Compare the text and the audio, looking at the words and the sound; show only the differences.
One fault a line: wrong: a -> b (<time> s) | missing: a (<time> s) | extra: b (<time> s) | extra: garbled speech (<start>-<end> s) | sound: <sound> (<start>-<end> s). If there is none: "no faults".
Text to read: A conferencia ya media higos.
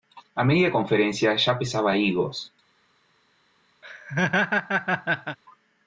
extra: media (0.4 s)
wrong: media -> pesaba (1.6 s)
sound: laugh (3.8-5.4 s)